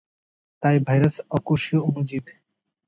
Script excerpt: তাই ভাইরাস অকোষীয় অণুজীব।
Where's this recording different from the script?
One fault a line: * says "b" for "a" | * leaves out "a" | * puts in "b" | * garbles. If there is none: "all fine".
all fine